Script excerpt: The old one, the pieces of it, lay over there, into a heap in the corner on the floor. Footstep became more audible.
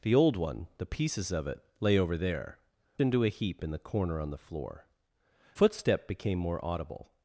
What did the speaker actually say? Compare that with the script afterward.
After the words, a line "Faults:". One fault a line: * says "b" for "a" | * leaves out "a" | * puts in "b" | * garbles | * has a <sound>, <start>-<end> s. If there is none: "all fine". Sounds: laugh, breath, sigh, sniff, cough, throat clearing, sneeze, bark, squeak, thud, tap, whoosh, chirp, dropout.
The old one, the pieces of it, lay over there, into a heap in the corner on the floor. Footstep became more audible.
Faults:
all fine